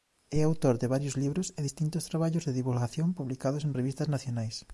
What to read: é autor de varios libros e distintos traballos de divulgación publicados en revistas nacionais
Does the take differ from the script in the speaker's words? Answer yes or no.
no